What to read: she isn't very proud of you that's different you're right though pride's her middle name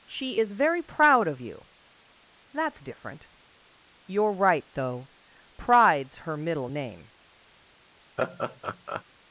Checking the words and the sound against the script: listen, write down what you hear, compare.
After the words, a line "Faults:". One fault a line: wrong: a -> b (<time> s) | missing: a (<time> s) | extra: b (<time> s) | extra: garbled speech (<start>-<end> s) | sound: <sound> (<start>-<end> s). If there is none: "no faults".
she is very proud of you that's different you're right though pride's her middle name
Faults:
wrong: isn't -> is (0.4 s)
sound: laugh (8.2-9.0 s)